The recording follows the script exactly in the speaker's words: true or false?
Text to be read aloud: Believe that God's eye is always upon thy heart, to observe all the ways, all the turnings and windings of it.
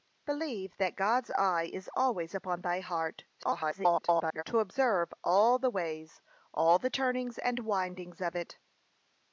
false